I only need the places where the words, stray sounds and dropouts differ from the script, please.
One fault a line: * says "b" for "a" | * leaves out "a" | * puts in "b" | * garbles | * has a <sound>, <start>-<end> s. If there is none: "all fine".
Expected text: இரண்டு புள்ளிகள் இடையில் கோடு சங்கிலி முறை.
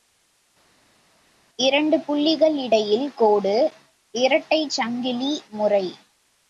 * puts in "இரட்டைச்"